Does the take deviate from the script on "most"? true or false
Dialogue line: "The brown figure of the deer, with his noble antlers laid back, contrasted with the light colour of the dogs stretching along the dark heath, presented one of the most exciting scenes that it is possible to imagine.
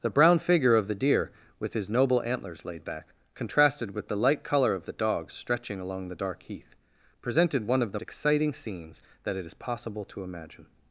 true